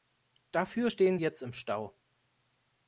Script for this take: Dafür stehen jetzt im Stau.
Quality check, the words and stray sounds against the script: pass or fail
pass